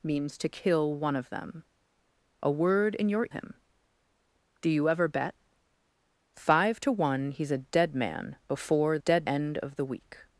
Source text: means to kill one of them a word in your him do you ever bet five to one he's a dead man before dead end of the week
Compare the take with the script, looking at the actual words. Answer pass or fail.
pass